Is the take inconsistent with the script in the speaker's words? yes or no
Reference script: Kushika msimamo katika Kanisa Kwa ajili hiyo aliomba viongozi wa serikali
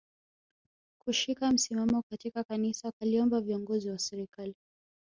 yes